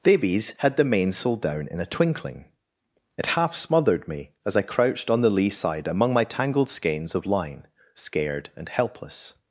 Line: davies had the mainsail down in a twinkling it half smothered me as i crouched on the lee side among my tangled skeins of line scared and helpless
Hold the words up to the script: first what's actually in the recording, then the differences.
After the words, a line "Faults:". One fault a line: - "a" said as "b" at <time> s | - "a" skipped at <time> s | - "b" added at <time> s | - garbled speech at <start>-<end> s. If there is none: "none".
davies had the mainsail down in a twinkling it half smothered me as i crouched on the lee side among my tangled skeins of line scared and helpless
Faults:
none